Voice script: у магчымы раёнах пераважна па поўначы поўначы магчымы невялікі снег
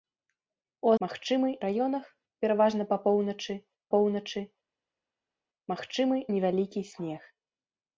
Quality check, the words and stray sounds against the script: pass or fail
pass